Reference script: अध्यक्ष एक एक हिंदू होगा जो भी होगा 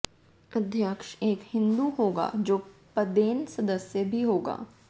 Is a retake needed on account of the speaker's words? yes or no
yes